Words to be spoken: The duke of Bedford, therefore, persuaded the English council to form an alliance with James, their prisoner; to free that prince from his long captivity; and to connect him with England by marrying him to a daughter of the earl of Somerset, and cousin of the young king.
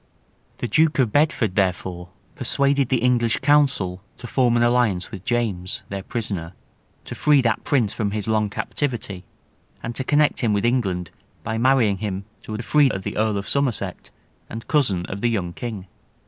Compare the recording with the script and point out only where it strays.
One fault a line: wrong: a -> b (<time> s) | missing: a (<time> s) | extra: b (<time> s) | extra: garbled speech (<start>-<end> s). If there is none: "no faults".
wrong: daughter -> free (12.6 s)